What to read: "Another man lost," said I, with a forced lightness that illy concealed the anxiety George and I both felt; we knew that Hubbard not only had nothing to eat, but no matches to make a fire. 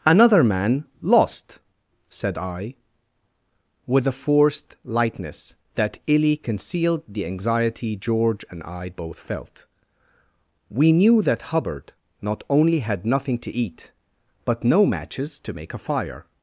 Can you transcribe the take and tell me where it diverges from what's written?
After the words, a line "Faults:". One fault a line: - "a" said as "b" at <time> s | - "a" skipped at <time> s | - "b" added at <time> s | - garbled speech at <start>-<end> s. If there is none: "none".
"Another man lost," said I, with a forced lightness that illy concealed the anxiety George and I both felt; we knew that Hubbard not only had nothing to eat, but no matches to make a fire.
Faults:
none